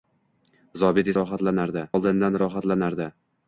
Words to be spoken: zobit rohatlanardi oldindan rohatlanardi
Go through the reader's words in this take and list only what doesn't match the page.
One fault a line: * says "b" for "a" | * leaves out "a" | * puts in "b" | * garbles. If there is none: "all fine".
all fine